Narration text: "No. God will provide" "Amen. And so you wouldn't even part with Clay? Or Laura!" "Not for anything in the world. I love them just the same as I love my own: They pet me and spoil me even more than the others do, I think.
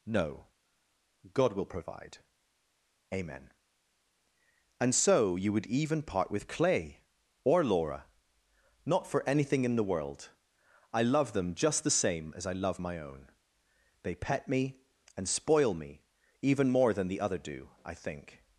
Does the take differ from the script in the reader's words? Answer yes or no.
yes